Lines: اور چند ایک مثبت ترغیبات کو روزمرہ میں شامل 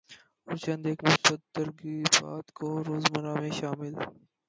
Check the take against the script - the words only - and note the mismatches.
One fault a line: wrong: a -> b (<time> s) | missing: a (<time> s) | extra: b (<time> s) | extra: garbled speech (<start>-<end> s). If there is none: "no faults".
no faults